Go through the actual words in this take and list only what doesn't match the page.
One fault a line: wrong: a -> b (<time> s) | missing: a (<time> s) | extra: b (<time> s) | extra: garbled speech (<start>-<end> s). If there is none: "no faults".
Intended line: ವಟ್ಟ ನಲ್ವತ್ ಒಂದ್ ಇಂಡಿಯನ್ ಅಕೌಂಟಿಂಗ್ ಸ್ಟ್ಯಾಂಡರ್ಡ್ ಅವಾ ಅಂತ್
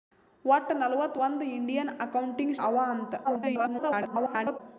missing: ಸ್ಟ್ಯಾಂಡರ್ಡ್ (2.6 s)
extra: garbled speech (3.2-4.6 s)